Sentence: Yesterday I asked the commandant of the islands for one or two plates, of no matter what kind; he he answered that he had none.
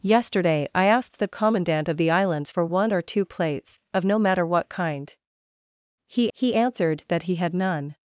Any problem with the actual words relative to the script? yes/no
no